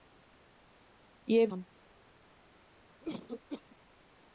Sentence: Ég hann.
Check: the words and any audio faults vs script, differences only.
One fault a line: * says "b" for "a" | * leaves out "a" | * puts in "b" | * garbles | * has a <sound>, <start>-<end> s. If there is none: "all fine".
* has a cough, 3.0-3.8 s